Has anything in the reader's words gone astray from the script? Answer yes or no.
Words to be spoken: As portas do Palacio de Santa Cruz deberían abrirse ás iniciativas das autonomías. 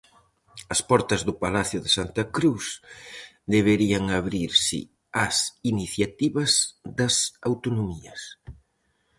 no